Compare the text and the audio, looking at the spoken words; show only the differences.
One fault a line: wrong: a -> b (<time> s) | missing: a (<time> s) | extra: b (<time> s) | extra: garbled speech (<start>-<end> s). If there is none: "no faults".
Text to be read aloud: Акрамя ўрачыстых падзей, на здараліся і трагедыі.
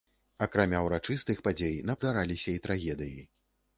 no faults